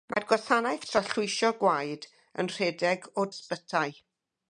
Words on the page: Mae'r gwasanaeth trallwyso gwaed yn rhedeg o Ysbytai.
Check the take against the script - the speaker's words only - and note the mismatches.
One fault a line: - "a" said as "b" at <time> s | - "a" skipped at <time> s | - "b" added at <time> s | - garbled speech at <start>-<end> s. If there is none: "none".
none